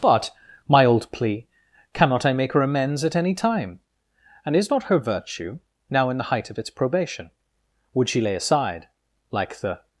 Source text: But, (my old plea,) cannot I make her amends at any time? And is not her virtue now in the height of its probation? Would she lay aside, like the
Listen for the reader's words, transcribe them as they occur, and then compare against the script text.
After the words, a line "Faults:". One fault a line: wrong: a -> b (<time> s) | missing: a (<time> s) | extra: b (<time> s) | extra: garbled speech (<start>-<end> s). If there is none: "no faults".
But, (my old plea,) cannot I make her amends at any time? And is not her virtue now in the height of its probation? Would she lay aside, like the
Faults:
no faults